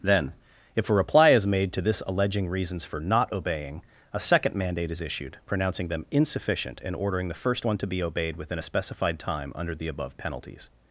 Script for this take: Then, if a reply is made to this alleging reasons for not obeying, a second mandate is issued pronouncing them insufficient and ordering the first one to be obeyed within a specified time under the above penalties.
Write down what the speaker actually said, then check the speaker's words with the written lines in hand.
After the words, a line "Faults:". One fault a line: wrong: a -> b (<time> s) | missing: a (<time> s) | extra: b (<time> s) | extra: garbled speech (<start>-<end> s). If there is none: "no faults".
Then, if a reply is made to this alleging reasons for not obeying, a second mandate is issued pronouncing them insufficient and ordering the first one to be obeyed within a specified time under the above penalties.
Faults:
no faults